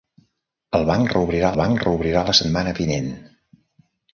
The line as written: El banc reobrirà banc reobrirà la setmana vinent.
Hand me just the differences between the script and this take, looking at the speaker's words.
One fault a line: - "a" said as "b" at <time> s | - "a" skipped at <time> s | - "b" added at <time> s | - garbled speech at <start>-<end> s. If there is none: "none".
none